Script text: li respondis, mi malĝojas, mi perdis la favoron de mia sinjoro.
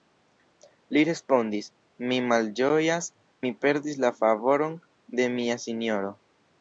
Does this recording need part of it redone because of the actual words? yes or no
no